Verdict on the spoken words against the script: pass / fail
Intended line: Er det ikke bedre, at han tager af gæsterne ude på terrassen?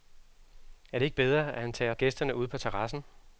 pass